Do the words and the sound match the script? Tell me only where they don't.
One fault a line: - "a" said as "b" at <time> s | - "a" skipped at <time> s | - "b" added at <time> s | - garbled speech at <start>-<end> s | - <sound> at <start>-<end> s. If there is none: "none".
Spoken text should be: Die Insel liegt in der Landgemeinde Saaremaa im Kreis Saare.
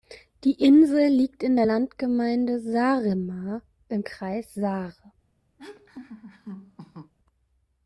- laugh at 5.6-7.1 s